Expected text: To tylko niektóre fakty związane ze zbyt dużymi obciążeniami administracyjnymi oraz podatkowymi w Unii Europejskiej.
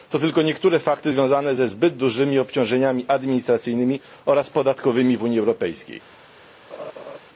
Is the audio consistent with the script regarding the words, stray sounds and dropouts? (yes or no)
no